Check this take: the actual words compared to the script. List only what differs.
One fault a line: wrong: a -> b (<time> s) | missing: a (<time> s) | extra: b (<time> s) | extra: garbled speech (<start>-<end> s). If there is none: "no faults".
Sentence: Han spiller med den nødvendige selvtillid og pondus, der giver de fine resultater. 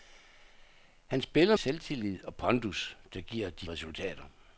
missing: med den nødvendige (1.6 s)
missing: fine (3.7 s)